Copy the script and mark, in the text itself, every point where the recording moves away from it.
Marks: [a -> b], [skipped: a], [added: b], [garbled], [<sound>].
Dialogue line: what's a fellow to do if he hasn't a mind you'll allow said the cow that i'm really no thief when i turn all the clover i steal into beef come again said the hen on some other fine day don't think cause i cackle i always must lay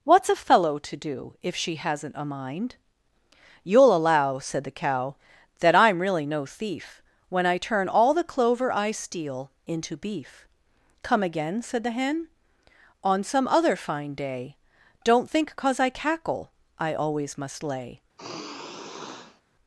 what's a fellow to do if [he -> she] hasn't a mind you'll allow said the cow that i'm really no thief when i turn all the clover i steal into beef come again said the hen on some other fine day don't think cause i cackle i always must lay [sigh]